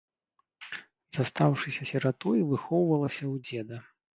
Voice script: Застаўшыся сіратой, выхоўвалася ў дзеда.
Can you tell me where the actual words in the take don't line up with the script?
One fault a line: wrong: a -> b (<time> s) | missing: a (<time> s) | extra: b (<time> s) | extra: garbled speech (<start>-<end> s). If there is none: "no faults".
no faults